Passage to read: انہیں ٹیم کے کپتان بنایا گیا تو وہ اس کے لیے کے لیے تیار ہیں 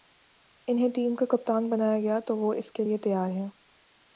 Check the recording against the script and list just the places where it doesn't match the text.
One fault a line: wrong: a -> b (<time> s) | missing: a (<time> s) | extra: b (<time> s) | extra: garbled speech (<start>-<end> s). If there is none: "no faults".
wrong: کے -> کا (1.1 s)
missing: کے لیے (3.0 s)